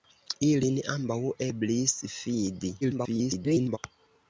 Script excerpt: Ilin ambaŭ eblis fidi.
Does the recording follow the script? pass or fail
fail